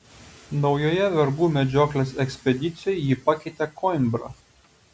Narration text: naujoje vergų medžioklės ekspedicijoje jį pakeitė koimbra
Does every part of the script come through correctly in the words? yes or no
yes